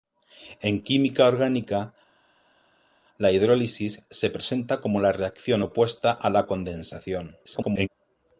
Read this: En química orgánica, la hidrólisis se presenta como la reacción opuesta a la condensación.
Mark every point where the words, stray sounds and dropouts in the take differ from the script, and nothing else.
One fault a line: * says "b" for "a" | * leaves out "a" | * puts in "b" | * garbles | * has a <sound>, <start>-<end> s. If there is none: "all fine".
* garbles